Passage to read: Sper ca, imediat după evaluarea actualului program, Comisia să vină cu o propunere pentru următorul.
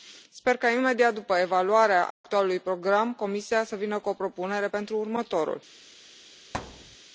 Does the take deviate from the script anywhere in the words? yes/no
no